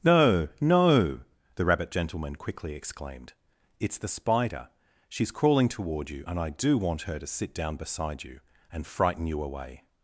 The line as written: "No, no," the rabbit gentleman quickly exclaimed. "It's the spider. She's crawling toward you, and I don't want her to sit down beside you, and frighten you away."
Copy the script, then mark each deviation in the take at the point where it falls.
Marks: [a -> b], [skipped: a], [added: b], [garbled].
"No, no," the rabbit gentleman quickly exclaimed. "It's the spider. She's crawling toward you, and I [don't -> do] want her to sit down beside you, and frighten you away."